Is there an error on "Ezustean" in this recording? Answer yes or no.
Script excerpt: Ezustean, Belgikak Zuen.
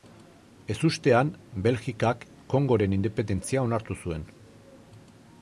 no